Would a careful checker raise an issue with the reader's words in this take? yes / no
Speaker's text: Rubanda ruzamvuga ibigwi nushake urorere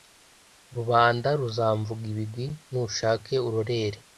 no